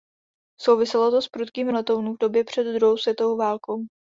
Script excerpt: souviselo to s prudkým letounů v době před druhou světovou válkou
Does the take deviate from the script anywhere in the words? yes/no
no